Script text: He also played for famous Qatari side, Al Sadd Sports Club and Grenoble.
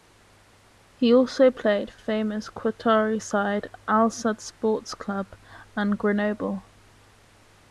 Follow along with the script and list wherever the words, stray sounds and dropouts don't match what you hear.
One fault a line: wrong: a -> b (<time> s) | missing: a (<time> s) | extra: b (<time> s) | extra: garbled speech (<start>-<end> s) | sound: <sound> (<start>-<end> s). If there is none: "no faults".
no faults